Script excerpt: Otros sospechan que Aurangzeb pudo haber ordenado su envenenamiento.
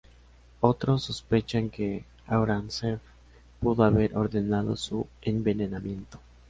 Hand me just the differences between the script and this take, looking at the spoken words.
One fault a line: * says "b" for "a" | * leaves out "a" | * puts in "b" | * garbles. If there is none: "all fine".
all fine